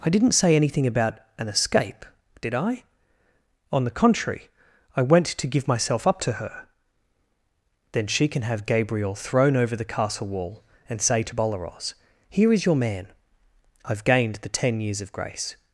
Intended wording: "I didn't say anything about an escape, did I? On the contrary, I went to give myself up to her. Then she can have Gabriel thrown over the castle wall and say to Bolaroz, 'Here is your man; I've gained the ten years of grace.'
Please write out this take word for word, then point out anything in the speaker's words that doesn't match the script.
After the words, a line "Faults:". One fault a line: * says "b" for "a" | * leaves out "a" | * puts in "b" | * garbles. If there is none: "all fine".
"I didn't say anything about an escape, did I? On the contrary, I went to give myself up to her. Then she can have Gabriel thrown over the castle wall and say to Bolaroz, 'Here is your man; I've gained the ten years of grace.'
Faults:
all fine